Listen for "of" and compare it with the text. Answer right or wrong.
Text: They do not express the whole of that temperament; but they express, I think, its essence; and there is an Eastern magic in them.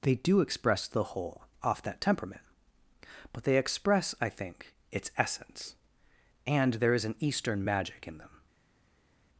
wrong